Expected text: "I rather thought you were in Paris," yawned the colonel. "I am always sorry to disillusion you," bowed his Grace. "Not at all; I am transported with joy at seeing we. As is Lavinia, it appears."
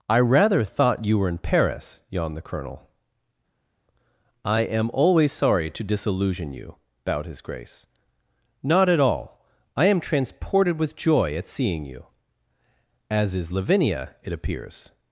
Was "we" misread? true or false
true